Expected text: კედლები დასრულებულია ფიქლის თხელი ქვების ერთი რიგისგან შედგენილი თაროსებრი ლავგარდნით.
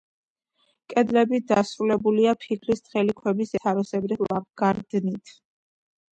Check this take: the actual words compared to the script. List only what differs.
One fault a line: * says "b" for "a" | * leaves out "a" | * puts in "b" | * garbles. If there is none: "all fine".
* leaves out "ერთი რიგისგან შედგენილი"